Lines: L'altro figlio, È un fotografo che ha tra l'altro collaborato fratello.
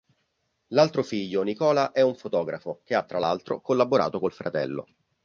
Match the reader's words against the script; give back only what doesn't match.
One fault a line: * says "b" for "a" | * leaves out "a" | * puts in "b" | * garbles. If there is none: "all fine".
* puts in "Nicola"
* puts in "col"